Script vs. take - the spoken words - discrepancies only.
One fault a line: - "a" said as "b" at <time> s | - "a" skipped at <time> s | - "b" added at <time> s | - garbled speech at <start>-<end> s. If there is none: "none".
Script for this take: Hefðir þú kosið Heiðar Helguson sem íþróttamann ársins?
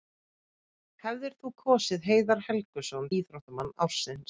- "sem" skipped at 3.1 s